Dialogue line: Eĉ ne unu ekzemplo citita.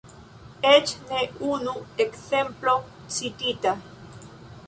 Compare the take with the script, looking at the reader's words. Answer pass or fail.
pass